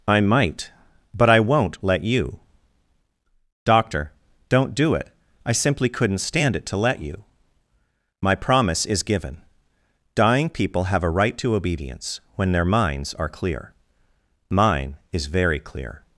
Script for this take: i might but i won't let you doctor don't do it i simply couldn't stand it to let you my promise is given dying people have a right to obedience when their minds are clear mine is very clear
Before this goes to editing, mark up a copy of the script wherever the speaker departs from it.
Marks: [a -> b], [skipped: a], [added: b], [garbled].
i might but i won't let you doctor don't do it i simply couldn't stand it to let you my promise is given dying people have a right to obedience when their minds are clear mine is very clear